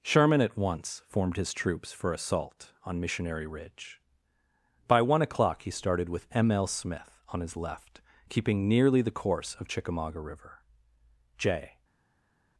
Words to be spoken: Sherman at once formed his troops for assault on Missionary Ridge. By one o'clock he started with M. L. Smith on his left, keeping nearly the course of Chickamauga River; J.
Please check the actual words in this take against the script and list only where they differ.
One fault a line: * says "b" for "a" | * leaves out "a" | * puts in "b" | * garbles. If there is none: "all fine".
all fine